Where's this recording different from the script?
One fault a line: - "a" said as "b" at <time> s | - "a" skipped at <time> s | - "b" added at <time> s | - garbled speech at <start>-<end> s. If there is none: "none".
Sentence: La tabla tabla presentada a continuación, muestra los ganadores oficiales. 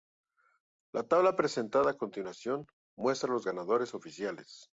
- "tabla" skipped at 1.4 s